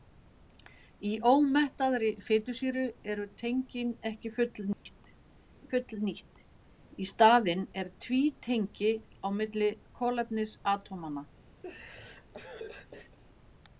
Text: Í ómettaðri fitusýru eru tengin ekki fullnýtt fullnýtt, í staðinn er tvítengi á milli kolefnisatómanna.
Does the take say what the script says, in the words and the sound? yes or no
no